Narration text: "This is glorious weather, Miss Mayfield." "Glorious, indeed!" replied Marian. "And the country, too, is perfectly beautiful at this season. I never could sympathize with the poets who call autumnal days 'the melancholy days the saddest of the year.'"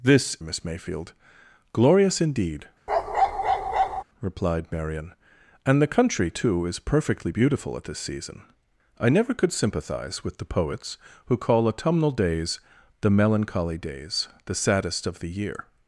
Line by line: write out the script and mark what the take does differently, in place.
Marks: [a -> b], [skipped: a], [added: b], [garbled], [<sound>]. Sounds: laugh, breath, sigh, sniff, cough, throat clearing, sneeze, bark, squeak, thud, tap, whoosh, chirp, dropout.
"This [skipped: is glorious weather,] Miss Mayfield." "Glorious, indeed!" [bark] replied Marian. "And the country, too, is perfectly beautiful at this season. I never could sympathize with the poets who call autumnal days 'the melancholy days the saddest of the year.'"